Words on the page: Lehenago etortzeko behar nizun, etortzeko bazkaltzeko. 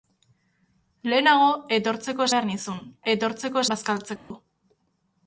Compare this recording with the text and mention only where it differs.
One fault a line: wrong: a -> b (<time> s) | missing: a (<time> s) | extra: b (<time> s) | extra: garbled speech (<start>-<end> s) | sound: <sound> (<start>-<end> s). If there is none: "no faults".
sound: dropout (4.2-4.3 s)